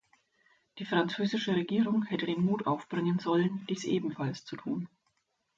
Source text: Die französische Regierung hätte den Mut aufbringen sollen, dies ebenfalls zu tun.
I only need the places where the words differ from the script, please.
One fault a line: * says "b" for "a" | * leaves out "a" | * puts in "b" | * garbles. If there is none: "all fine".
all fine